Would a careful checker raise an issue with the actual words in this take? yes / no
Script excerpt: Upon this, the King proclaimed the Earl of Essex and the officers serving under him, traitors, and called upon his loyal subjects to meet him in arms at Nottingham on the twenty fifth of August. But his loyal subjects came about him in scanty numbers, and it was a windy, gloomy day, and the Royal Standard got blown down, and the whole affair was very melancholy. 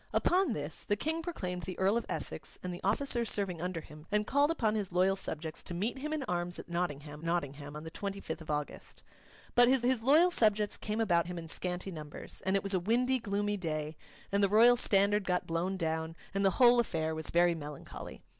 yes